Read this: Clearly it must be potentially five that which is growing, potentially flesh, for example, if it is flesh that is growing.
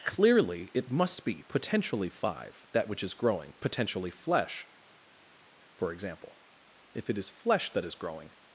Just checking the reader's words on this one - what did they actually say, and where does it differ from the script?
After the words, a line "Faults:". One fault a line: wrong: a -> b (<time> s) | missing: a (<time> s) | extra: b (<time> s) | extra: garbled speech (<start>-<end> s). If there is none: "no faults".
Clearly it must be potentially five that which is growing, potentially flesh, for example, if it is flesh that is growing.
Faults:
no faults